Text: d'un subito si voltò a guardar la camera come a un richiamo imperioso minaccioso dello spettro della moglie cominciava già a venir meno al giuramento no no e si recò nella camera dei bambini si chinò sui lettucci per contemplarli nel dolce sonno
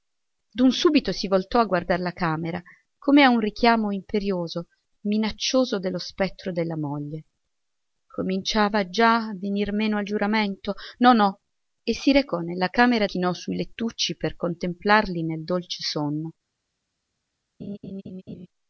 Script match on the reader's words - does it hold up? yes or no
no